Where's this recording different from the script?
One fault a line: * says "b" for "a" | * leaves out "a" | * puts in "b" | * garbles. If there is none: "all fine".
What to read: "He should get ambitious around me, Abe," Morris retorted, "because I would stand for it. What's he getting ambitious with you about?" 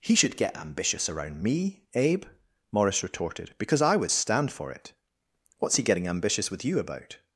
all fine